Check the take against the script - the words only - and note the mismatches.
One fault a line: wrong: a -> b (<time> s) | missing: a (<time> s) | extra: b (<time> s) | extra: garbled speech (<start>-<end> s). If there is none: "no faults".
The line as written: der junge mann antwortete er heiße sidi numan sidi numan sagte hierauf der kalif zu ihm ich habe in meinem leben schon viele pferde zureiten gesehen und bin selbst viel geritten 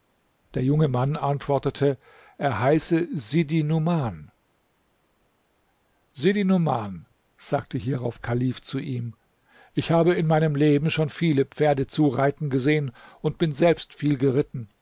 missing: der (8.2 s)